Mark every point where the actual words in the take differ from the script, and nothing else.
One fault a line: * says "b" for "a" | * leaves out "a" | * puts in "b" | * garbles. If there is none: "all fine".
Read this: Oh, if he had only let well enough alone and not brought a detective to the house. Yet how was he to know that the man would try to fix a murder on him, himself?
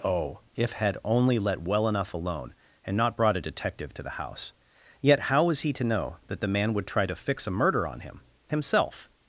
* leaves out "he"